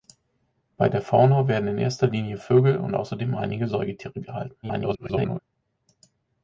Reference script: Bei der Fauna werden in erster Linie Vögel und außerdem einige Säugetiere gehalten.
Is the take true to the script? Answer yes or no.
no